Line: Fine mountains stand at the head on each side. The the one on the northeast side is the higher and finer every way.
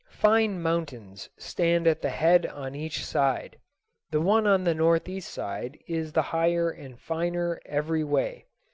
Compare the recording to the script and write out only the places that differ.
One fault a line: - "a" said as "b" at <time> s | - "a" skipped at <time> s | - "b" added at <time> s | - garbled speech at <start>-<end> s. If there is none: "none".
- "the" skipped at 4.2 s